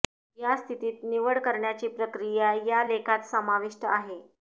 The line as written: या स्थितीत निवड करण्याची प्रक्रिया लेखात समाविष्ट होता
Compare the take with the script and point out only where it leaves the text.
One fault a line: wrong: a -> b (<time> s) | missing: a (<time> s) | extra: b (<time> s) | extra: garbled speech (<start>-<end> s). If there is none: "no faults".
extra: या (2.6 s)
wrong: होता -> आहे (3.9 s)